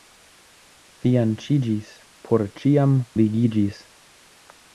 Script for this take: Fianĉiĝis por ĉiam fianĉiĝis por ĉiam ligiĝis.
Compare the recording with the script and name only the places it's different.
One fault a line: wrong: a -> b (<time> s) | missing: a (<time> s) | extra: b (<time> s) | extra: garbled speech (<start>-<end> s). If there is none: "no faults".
missing: fianĉiĝis por ĉiam (3.0 s)